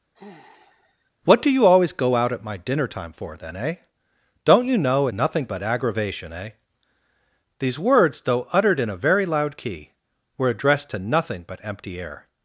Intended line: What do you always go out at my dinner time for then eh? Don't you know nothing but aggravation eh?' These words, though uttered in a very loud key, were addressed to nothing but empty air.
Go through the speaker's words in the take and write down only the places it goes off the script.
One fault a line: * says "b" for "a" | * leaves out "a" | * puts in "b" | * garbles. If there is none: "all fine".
all fine